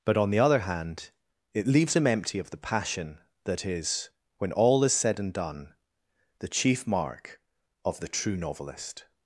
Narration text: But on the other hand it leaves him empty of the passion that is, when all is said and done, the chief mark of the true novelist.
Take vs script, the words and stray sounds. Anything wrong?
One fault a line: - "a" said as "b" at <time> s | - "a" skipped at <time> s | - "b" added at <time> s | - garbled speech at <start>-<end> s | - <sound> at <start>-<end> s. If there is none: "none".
none